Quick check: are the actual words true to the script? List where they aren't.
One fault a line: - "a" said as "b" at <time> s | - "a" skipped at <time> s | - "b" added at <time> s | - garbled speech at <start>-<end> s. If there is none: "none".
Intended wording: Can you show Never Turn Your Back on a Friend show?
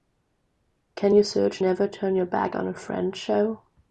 - "show" said as "search" at 1.2 s